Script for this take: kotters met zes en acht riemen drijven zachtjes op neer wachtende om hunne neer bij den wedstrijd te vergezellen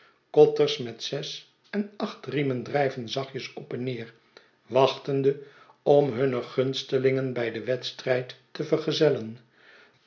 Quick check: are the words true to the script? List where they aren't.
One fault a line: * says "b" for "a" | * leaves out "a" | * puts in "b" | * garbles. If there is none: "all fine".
* puts in "en"
* says "gunstelingen" for "neer"